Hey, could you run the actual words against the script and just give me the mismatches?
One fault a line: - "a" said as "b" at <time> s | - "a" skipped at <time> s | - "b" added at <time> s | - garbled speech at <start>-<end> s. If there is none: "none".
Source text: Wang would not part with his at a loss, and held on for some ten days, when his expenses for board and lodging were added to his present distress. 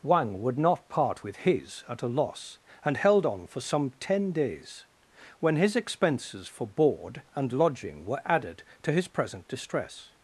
none